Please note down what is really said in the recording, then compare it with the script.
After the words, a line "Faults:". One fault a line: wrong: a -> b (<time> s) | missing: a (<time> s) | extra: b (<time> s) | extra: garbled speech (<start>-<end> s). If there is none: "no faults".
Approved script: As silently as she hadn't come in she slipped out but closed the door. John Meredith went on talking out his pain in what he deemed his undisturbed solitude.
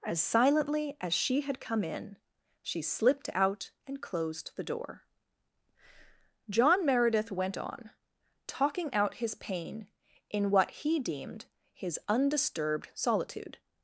As silently as she had come in she slipped out and closed the door. John Meredith went on talking out his pain in what he deemed his undisturbed solitude.
Faults:
wrong: hadn't -> had (1.4 s)
wrong: but -> and (3.9 s)